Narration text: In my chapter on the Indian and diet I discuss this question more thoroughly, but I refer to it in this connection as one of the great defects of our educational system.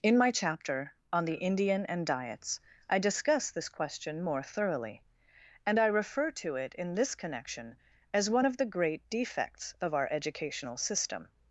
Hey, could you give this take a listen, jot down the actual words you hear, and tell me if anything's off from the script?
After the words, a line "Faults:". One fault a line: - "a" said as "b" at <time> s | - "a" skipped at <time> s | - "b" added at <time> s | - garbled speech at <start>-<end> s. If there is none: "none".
In my chapter on the Indian and diets I discuss this question more thoroughly, and I refer to it in this connection as one of the great defects of our educational system.
Faults:
- "diet" said as "diets" at 2.1 s
- "but" said as "and" at 5.7 s